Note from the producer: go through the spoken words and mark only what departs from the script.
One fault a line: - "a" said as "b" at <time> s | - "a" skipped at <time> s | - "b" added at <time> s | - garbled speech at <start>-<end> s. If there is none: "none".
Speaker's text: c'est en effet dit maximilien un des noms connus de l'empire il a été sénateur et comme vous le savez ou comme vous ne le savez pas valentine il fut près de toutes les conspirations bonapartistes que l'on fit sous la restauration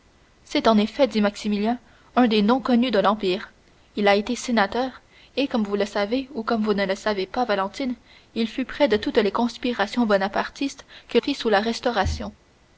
- "l'on" skipped at 11.2 s